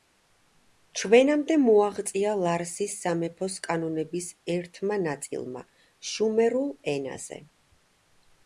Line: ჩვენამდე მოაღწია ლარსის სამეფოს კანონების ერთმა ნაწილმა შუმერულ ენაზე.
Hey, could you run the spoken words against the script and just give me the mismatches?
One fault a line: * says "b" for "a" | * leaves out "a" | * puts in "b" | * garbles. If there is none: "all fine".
all fine